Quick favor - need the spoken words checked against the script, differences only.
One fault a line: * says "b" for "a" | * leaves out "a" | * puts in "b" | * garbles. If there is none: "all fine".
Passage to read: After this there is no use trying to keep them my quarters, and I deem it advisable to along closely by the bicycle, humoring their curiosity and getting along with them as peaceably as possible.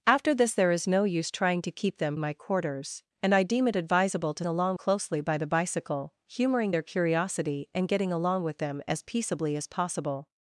all fine